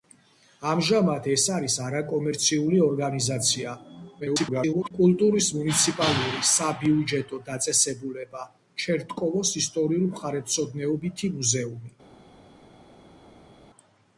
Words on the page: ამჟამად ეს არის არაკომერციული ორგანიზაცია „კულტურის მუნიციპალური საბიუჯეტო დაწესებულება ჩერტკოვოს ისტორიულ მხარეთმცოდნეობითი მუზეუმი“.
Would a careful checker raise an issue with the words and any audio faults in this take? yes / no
yes